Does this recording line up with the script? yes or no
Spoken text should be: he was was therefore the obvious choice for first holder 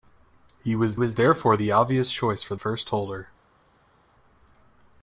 yes